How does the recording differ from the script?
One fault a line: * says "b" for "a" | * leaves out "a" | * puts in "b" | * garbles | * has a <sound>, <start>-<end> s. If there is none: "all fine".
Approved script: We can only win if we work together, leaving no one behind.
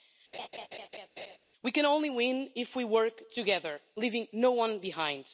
* has a laugh, 0.3-1.4 s